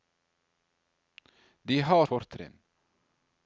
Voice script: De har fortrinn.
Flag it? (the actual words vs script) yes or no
no